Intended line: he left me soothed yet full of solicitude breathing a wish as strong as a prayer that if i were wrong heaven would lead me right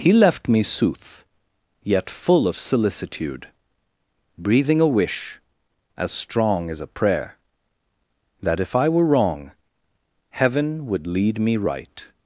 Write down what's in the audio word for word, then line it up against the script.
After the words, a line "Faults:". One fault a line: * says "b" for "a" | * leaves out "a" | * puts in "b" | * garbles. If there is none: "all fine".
he left me sooth yet full of solicitude breathing a wish as strong as a prayer that if i were wrong heaven would lead me right
Faults:
* says "sooth" for "soothed"